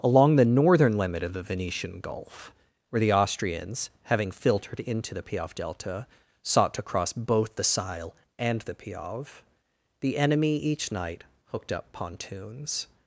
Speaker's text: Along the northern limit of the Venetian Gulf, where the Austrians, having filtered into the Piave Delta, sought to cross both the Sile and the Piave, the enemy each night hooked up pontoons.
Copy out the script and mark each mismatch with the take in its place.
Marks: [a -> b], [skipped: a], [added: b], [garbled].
Along the northern limit of the Venetian Gulf, where the Austrians, having filtered into the Piave Delta, sought to cross both the Sile and the Piave, the enemy each night hooked up pontoons.